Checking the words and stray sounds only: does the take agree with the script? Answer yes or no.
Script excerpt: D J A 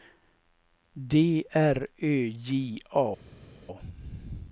no